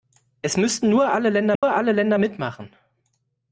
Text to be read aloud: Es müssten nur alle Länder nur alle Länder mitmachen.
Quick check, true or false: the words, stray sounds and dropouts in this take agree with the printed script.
false